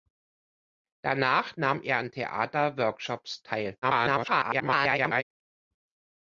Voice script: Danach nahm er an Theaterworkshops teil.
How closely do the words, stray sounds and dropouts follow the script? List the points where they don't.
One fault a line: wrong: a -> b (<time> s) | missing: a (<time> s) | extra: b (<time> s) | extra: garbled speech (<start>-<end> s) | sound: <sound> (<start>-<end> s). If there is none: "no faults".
extra: garbled speech (3.8-5.2 s)